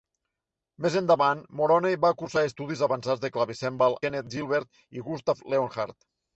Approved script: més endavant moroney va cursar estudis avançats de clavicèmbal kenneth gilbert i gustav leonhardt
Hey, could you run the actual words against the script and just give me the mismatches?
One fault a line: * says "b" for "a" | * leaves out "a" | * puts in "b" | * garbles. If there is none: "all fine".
all fine